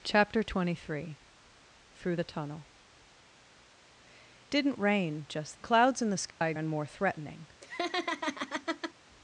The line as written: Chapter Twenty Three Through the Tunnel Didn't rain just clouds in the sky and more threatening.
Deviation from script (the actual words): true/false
false